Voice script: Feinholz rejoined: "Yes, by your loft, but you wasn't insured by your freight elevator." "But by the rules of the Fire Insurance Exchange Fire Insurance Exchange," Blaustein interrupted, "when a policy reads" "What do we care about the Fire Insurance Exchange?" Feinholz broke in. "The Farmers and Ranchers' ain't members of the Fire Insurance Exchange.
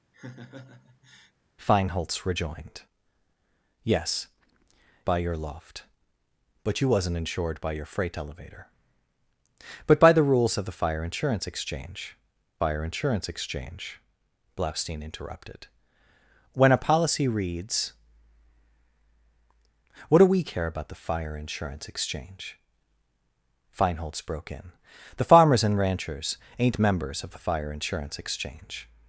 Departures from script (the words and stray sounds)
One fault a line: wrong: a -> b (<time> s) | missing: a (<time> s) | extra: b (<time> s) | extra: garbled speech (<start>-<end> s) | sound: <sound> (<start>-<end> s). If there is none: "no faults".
sound: laugh (0.1-1.3 s)